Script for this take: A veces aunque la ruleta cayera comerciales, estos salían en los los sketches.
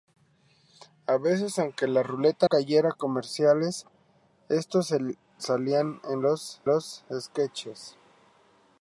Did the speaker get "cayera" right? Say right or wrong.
right